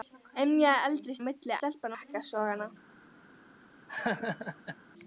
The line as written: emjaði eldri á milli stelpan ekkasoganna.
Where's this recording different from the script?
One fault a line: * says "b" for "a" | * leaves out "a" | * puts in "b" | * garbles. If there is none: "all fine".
all fine